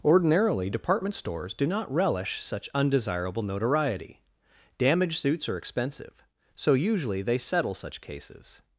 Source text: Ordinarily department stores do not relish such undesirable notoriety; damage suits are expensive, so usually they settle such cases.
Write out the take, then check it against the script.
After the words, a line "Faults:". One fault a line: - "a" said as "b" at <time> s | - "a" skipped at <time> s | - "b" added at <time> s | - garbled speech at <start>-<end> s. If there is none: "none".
Ordinarily department stores do not relish such undesirable notoriety; damage suits are expensive, so usually they settle such cases.
Faults:
none